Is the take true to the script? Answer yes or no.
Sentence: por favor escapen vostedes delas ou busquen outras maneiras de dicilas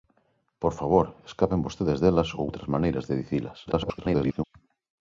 no